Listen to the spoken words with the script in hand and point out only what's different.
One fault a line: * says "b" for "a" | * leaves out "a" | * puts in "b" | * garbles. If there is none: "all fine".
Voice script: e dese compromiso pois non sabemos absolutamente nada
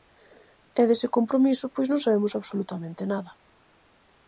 all fine